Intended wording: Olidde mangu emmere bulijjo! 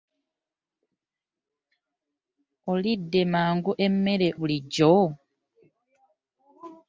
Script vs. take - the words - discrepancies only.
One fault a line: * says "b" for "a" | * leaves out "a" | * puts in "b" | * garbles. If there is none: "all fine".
all fine